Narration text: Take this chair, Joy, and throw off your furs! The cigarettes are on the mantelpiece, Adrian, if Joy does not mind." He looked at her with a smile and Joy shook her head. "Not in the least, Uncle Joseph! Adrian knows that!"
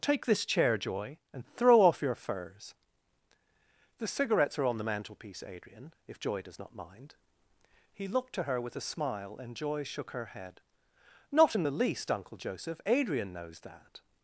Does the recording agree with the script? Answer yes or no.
no